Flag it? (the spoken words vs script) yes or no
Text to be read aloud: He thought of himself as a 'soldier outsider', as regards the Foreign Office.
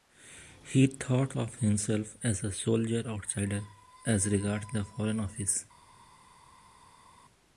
no